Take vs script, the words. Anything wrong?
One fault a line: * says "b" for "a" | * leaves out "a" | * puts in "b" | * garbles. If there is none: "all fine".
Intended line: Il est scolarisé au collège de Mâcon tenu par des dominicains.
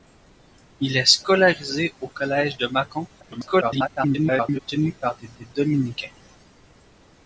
* garbles
* puts in "des"